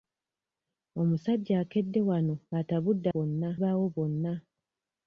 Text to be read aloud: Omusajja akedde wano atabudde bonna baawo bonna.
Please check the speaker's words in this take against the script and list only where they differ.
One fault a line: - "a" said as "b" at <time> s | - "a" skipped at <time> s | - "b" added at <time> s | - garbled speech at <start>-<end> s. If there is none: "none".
none